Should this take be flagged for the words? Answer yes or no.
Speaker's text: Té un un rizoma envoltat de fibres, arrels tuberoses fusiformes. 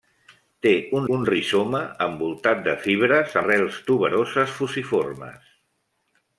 no